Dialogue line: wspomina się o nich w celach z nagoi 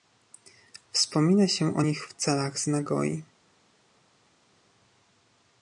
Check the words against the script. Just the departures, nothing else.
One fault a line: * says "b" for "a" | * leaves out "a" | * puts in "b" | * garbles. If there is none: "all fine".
all fine